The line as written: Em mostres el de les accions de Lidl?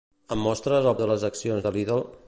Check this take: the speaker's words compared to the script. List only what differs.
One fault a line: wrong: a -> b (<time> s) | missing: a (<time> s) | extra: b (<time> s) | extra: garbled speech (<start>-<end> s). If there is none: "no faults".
no faults